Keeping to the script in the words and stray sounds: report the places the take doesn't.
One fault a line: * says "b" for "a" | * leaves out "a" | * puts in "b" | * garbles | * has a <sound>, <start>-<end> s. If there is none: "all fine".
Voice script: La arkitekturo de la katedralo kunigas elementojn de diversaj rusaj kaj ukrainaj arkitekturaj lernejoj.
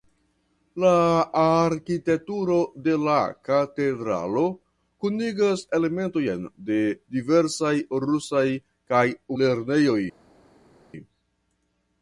* leaves out "ukrainaj arkitekturaj"